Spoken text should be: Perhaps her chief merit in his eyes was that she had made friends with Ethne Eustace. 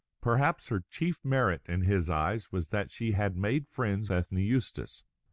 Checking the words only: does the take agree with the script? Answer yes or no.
no